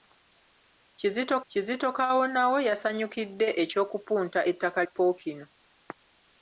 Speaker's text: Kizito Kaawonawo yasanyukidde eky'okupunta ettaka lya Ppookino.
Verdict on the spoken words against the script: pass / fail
fail